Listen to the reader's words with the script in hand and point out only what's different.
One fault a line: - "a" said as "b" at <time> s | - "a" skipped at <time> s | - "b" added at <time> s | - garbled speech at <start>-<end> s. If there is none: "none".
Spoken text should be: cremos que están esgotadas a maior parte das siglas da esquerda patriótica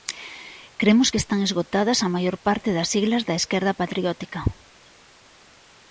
none